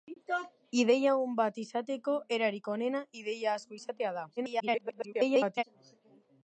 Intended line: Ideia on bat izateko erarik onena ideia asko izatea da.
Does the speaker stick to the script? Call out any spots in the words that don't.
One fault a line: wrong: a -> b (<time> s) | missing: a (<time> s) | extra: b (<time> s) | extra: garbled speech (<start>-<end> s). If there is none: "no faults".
extra: garbled speech (4.4-5.6 s)